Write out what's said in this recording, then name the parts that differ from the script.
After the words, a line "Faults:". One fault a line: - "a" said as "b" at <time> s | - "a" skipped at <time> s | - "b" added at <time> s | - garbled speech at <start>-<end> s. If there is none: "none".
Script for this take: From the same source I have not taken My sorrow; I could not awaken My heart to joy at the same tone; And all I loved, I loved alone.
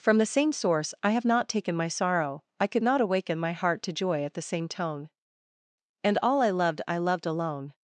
From the same source I have not taken My sorrow; I could not awaken My heart to joy at the same tone; And all I loved, I loved alone.
Faults:
none